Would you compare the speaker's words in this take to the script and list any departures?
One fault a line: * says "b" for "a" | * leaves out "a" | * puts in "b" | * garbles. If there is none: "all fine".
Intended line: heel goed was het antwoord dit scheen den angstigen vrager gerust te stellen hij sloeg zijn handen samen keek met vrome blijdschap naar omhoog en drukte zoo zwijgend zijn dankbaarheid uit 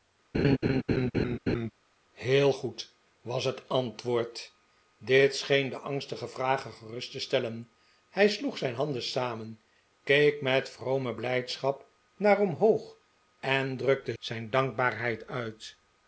* leaves out "zoo zwijgend"